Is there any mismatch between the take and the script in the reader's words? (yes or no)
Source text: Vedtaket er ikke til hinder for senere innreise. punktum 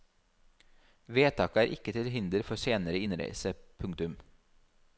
no